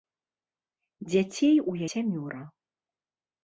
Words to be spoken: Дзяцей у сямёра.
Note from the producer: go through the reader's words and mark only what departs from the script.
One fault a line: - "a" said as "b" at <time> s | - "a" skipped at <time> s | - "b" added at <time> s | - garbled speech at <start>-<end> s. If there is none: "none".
none